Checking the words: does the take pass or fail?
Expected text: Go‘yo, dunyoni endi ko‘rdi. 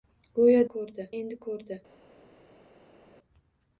fail